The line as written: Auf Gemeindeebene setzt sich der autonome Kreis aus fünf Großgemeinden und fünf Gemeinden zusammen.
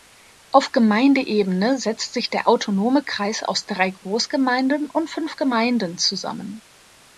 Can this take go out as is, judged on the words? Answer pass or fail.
fail